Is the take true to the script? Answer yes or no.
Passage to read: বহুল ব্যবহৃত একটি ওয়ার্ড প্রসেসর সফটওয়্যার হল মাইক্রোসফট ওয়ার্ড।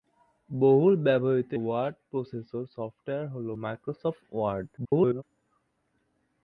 no